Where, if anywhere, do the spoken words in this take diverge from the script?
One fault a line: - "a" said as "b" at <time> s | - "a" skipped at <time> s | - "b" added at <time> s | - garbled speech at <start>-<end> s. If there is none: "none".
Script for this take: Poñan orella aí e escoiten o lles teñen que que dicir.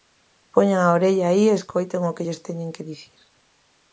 - "a" added at 0.8 s
- "que" added at 2.1 s
- "que" skipped at 2.9 s